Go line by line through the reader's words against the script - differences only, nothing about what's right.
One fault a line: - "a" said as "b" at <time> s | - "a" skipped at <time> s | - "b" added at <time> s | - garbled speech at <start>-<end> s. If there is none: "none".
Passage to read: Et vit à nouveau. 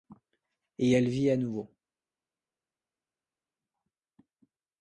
- "elle" added at 0.9 s